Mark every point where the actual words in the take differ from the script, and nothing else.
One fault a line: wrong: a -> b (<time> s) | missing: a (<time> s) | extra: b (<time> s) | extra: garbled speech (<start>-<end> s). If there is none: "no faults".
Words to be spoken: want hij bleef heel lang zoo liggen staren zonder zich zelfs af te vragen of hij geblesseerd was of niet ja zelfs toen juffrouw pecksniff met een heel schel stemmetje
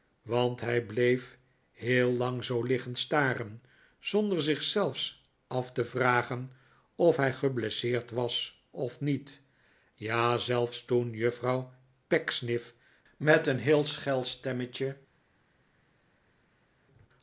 no faults